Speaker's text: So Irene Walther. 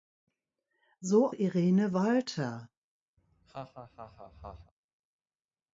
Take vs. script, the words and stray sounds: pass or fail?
fail